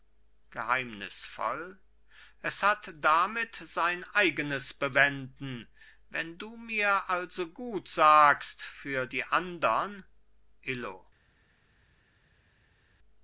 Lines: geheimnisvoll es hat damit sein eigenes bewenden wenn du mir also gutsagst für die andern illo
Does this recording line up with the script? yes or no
yes